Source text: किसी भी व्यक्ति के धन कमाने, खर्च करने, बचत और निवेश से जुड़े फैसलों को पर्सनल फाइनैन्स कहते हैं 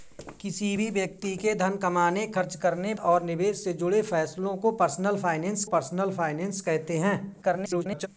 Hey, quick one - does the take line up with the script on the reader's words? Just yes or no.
no